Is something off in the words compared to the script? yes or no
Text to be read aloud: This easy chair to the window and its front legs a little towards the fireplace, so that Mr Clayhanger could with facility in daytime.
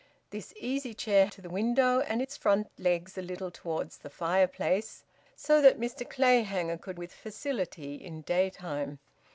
no